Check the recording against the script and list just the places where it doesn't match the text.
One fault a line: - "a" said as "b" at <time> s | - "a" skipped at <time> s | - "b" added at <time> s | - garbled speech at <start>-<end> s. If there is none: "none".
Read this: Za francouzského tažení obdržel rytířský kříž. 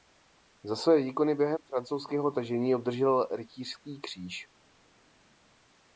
- "své výkony během" added at 0.8 s